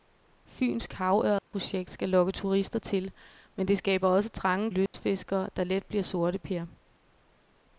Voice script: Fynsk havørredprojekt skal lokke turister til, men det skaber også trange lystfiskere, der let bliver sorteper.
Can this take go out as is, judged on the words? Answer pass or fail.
pass